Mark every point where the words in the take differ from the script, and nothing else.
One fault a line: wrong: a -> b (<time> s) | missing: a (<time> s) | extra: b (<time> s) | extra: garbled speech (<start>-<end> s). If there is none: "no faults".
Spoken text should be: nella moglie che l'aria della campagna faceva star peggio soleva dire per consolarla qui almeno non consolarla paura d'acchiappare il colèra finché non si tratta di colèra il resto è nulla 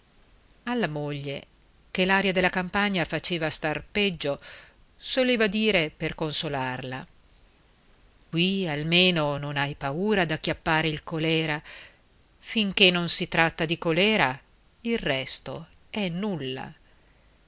wrong: nella -> alla (0.6 s)
wrong: consolarla -> hai (9.6 s)